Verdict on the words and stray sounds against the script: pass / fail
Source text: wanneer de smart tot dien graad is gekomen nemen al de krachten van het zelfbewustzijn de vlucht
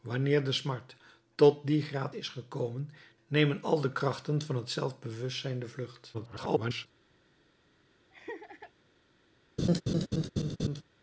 fail